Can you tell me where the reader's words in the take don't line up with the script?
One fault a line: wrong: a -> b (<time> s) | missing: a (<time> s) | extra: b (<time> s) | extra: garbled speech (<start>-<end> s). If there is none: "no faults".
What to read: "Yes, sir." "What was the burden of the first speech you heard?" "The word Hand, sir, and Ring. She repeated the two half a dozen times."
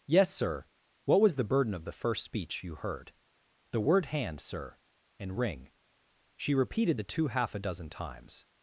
no faults